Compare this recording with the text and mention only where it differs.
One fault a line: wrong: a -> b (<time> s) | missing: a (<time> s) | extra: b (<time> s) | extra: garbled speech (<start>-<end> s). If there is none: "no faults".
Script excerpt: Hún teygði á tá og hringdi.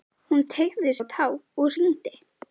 no faults